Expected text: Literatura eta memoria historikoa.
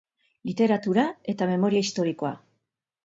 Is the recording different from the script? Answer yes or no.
no